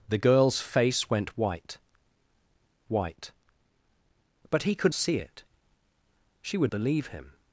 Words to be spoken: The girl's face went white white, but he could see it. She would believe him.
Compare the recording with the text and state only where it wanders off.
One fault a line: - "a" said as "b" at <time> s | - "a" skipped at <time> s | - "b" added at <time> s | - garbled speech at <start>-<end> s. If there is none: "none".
none